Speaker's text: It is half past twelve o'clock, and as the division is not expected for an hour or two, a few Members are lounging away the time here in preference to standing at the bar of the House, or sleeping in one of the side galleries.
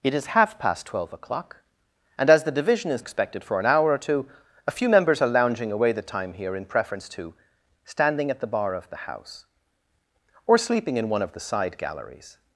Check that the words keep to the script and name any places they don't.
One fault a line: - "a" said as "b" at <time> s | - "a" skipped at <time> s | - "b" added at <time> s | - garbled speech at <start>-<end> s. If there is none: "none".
- "not" skipped at 3.0 s